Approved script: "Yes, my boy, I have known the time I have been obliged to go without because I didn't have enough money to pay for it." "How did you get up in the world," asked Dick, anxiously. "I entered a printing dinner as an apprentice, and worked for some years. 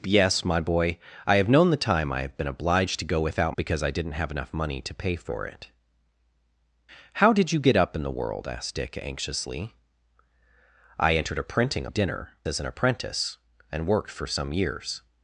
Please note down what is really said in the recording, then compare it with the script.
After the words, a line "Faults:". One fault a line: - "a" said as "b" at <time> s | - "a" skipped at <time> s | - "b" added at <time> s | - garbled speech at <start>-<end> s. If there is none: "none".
"Yes, my boy, I have known the time I have been obliged to go without because I didn't have enough money to pay for it." "How did you get up in the world," asked Dick, anxiously. "I entered a printing dinner as an apprentice, and worked for some years.
Faults:
none